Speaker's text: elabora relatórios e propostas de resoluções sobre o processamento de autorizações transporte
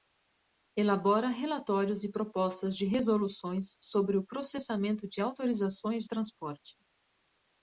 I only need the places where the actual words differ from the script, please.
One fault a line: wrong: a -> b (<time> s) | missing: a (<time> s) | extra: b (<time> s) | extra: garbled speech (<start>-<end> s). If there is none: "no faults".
no faults